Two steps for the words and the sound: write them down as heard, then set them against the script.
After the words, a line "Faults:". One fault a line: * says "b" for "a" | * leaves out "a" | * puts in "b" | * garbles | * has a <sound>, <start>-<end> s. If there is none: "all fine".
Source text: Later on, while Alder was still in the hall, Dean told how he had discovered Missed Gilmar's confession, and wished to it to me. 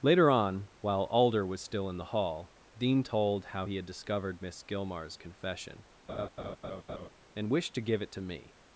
Later on, while Alder was still in the hall, Dean told how he had discovered Miss Gilmar's confession, and wished to give it to me.
Faults:
* says "Miss" for "Missed"
* has a laugh, 6.1-7.1 s
* puts in "give"